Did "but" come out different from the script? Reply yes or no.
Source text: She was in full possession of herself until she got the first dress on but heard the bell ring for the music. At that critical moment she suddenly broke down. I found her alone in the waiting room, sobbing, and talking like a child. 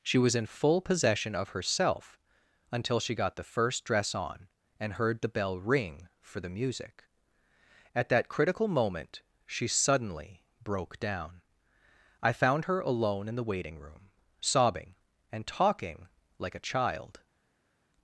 yes